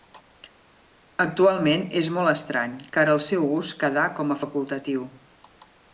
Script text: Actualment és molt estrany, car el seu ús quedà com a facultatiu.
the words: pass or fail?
pass